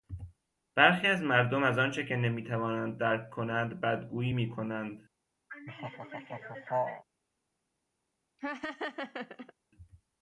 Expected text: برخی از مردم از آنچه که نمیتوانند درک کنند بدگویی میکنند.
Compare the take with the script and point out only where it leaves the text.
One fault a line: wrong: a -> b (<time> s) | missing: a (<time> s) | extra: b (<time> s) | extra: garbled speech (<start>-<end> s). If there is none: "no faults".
no faults